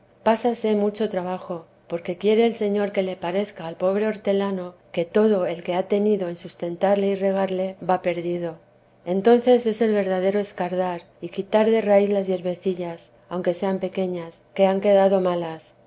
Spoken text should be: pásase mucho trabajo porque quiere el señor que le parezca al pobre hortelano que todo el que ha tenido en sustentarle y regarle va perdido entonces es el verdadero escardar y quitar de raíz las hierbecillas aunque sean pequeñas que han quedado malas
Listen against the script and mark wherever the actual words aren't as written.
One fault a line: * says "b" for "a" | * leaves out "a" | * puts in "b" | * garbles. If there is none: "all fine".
all fine